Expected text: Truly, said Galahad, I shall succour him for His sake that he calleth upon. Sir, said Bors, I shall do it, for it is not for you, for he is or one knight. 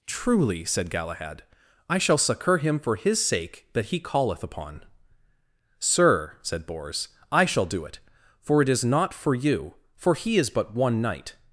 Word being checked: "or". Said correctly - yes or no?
no